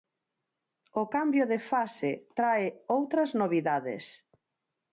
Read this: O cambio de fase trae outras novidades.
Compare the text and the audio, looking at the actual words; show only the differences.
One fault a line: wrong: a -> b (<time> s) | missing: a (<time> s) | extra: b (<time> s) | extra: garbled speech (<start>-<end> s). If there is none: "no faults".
no faults